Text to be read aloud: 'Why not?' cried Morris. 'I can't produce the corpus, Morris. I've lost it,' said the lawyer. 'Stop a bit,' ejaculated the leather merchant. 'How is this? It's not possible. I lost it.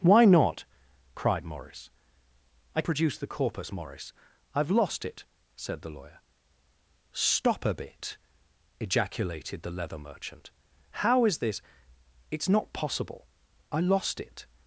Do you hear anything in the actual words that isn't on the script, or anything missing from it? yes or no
yes